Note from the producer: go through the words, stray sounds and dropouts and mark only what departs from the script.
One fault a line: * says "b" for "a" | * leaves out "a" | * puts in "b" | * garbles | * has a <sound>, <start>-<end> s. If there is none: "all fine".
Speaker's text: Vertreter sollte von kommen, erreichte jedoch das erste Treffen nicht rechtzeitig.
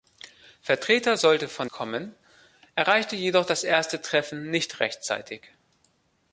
all fine